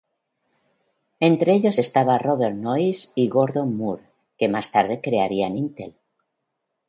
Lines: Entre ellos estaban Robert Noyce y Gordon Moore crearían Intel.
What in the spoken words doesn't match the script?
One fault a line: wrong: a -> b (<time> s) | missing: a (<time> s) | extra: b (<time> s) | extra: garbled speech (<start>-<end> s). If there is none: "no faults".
extra: que más tarde (4.4 s)